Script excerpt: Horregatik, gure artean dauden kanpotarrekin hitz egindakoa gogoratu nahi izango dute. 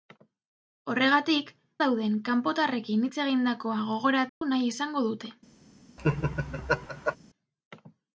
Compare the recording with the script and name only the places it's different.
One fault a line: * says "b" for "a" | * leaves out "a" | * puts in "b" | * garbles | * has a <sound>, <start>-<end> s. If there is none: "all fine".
* leaves out "gure artean"
* has a dropout, 4.3-4.4 s
* has a laugh, 6.0-7.2 s